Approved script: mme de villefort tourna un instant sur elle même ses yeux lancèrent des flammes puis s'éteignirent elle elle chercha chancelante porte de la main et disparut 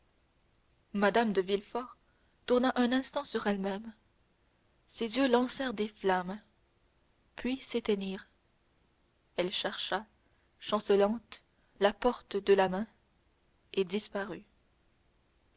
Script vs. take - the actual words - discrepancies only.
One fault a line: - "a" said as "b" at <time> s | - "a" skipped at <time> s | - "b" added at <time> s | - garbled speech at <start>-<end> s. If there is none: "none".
- "elle" skipped at 9.5 s
- "la" added at 11.8 s